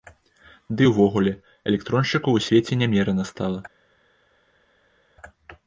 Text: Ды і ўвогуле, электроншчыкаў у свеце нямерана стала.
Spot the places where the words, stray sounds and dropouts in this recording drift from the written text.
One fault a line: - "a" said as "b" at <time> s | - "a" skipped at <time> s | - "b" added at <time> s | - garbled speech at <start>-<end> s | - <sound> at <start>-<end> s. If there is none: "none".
none